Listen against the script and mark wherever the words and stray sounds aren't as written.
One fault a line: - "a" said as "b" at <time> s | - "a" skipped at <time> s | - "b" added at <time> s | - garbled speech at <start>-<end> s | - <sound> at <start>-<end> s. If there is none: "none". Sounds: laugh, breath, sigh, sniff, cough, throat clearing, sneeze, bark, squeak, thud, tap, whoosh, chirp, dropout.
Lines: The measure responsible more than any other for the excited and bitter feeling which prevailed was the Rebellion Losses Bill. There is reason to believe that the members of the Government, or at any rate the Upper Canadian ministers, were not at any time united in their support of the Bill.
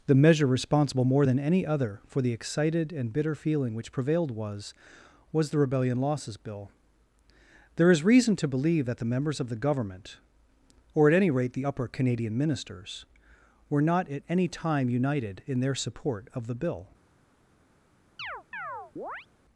- "was" added at 5.3 s
- chirp at 18.2-19.3 s